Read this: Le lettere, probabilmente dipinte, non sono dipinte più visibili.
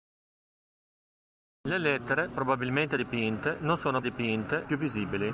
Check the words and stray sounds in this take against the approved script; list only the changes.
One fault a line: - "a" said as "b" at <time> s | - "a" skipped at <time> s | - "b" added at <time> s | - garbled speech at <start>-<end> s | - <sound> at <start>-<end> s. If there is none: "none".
none